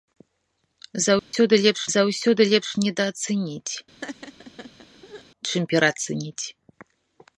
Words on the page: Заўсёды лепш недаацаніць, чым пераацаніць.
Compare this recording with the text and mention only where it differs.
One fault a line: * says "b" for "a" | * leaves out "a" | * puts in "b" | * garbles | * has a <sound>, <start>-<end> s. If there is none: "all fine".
* has a dropout, 1.2-1.3 s
* puts in "заўсёды лепш"
* has a laugh, 4.0-5.2 s